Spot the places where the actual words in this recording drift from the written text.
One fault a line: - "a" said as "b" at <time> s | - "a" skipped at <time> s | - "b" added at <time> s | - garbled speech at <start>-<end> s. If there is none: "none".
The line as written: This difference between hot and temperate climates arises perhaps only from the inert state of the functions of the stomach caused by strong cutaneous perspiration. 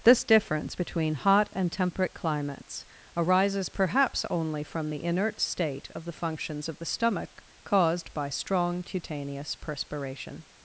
none